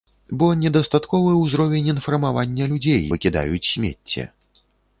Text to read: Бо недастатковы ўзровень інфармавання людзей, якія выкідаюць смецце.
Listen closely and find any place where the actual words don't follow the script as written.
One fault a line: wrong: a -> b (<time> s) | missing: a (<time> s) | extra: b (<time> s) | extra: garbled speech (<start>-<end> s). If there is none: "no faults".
missing: якія (3.0 s)